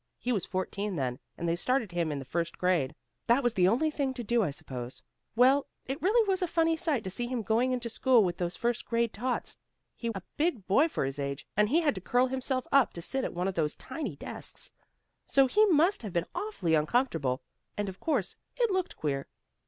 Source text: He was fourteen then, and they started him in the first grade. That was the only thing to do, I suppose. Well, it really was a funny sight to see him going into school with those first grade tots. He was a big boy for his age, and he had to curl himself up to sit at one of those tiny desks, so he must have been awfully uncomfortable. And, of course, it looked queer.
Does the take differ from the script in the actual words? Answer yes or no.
yes